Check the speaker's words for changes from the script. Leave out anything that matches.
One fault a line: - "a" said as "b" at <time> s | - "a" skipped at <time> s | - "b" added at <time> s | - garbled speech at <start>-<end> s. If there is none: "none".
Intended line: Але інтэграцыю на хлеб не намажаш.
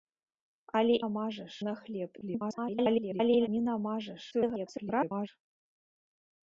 - "інтэграцыю" said as "намажаш" at 1.0 s
- garbled speech at 2.2-3.5 s
- garbled speech at 4.3-5.3 s